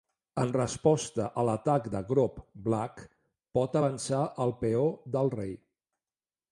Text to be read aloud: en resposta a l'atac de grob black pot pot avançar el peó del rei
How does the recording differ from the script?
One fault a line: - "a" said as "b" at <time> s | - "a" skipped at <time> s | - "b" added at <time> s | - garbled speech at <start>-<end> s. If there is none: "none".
- "pot" skipped at 3.8 s